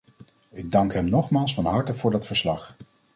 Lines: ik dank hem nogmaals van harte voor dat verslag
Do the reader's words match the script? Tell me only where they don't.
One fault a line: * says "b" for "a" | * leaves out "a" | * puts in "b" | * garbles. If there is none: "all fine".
all fine